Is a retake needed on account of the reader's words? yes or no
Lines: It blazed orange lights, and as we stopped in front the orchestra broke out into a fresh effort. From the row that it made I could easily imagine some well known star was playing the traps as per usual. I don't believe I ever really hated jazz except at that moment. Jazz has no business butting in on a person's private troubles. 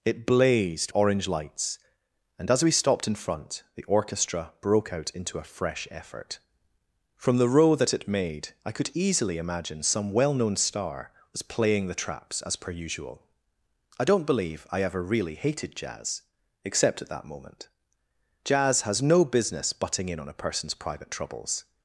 no